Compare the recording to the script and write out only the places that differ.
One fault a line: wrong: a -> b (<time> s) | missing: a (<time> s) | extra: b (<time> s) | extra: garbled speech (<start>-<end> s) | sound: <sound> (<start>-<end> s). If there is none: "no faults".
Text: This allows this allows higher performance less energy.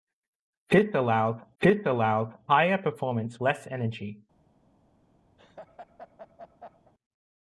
sound: laugh (5.4-6.9 s)